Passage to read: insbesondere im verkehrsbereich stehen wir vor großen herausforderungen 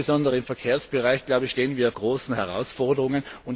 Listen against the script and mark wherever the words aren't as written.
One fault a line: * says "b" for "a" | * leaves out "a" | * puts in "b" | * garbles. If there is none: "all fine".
* leaves out "vor"